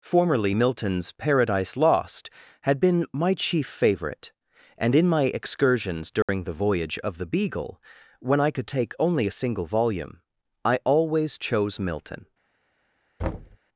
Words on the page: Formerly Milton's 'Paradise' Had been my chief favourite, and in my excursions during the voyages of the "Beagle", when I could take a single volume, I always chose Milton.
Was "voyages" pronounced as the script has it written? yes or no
no